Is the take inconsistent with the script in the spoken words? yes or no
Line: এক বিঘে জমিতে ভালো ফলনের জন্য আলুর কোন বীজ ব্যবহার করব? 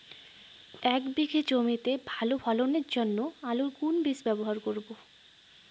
no